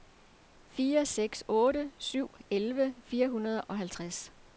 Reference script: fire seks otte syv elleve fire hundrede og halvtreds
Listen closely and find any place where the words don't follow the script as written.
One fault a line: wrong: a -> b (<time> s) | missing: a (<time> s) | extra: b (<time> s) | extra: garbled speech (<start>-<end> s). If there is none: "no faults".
no faults